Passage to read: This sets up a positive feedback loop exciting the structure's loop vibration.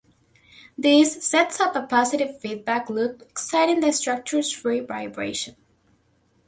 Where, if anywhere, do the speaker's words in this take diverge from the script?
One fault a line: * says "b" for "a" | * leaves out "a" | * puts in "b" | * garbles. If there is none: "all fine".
* says "free" for "loop"